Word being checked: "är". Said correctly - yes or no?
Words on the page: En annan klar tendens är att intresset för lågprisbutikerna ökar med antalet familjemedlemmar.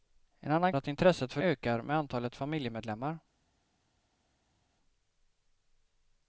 no